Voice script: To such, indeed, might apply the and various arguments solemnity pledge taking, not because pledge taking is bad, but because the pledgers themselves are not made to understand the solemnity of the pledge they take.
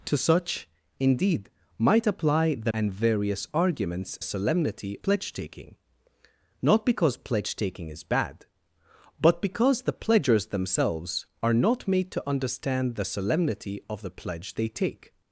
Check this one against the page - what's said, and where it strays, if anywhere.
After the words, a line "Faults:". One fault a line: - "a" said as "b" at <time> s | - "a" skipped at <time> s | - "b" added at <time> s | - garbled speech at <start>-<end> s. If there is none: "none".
To such, indeed, might apply the and various arguments solemnity pledge taking, not because pledge taking is bad, but because the pledgers themselves are not made to understand the solemnity of the pledge they take.
Faults:
none